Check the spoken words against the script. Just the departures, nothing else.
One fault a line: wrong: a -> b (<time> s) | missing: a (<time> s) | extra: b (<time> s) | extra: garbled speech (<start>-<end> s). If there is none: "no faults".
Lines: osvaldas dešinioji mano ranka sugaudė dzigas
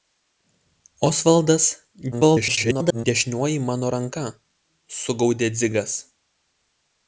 extra: garbled speech (2.1-3.1 s)